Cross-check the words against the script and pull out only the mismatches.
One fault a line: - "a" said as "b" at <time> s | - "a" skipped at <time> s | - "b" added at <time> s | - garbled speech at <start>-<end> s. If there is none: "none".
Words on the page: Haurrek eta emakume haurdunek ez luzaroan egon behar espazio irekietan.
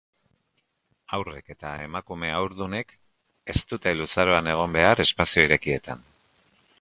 - "dute" added at 3.7 s